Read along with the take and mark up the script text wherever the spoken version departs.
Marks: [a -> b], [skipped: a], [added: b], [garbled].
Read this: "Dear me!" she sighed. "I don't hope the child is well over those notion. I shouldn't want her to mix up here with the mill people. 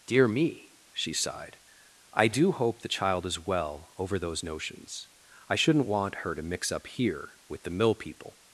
"Dear me!" she sighed. "I [don't -> do] hope the child is well over those [notion. -> notions] I shouldn't want her to mix up here with the mill people.